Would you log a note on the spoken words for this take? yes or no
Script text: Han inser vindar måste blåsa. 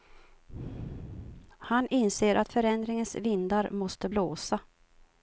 yes